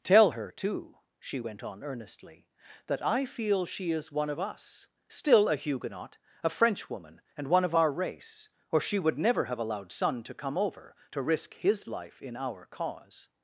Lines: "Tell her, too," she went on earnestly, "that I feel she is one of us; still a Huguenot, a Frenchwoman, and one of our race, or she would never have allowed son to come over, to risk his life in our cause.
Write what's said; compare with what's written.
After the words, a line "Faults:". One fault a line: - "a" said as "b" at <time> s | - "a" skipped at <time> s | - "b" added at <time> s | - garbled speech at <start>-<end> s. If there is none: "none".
"Tell her, too," she went on earnestly, "that I feel she is one of us; still a Huguenot, a Frenchwoman, and one of our race, or she would never have allowed son to come over, to risk his life in our cause.
Faults:
none